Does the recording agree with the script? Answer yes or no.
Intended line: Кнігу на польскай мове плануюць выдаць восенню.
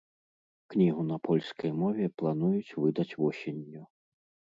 yes